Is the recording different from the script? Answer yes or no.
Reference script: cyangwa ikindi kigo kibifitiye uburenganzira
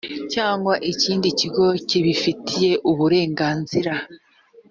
no